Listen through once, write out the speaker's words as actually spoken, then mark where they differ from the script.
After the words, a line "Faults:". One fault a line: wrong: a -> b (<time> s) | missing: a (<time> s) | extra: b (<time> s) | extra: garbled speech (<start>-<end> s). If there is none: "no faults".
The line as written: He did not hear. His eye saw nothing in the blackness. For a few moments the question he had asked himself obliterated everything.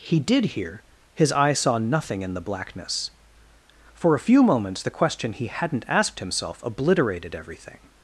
He did hear. His eye saw nothing in the blackness. For a few moments the question he hadn't asked himself obliterated everything.
Faults:
missing: not (0.5 s)
wrong: had -> hadn't (5.5 s)